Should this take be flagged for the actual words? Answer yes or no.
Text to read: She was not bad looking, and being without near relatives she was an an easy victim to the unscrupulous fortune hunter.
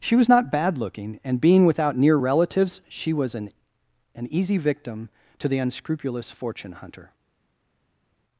no